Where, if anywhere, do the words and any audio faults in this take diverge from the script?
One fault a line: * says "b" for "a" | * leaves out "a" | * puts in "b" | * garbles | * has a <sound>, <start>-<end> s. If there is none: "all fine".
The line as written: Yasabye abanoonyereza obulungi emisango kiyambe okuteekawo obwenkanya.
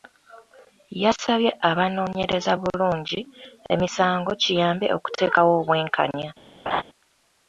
* has a laugh, 6.7-6.8 s